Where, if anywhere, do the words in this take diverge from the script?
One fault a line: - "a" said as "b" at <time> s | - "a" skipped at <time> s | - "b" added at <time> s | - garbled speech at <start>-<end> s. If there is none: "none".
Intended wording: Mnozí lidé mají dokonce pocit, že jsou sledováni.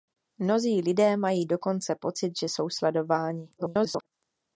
- garbled speech at 3.6-4.1 s